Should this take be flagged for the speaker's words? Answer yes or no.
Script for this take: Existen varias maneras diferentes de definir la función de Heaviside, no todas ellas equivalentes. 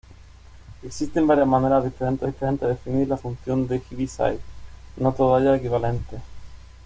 yes